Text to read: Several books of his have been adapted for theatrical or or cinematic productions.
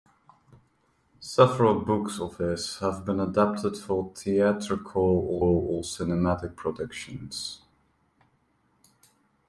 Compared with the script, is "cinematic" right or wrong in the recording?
right